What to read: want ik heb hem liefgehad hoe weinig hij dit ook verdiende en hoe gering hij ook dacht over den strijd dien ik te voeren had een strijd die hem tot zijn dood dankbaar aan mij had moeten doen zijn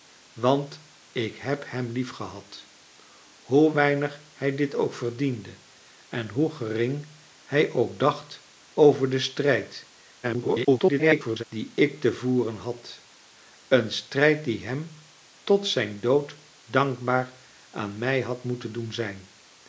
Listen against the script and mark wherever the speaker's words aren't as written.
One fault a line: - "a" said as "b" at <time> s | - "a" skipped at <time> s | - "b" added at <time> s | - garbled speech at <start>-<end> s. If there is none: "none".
- garbled speech at 10.2-11.4 s